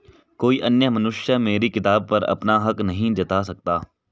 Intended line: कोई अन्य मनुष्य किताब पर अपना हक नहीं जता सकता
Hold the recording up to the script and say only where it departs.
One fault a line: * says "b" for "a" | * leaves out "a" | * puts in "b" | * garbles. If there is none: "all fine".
* puts in "मेरी"